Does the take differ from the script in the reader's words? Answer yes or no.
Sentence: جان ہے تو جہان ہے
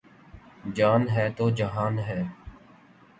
no